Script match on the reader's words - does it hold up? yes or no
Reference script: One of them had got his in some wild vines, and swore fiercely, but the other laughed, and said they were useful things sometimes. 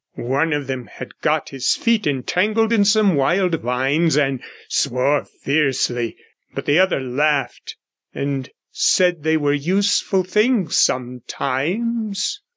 no